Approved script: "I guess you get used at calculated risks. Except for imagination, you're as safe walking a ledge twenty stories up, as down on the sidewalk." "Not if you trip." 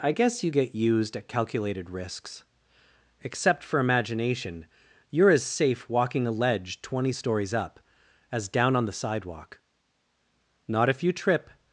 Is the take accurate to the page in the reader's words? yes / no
yes